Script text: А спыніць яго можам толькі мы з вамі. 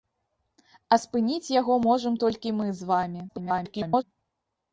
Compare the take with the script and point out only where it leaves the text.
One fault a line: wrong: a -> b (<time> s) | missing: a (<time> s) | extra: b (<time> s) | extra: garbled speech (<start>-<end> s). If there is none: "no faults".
extra: garbled speech (3.3-4.0 s)